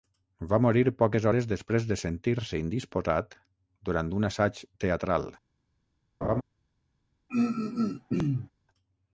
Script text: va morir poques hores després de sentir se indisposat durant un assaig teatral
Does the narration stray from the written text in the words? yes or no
no